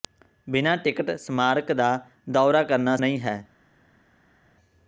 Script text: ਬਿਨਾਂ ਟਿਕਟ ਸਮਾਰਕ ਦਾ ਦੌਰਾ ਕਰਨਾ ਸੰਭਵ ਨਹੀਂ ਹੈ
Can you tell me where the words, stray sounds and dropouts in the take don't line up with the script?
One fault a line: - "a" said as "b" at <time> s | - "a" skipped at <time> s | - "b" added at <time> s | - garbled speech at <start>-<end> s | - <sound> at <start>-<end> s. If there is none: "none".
- "ਸੰਭਵ" skipped at 3.0 s